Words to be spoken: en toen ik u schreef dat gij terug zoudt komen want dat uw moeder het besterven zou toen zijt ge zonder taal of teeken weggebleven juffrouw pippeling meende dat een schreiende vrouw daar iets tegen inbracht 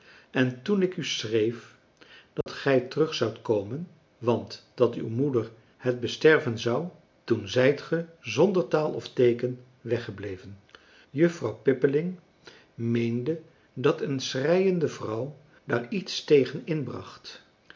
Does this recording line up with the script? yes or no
yes